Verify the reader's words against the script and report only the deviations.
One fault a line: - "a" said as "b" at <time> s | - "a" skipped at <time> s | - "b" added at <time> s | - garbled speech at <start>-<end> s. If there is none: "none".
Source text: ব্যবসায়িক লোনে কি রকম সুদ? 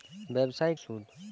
- "লোনে কি রকম" skipped at 0.8 s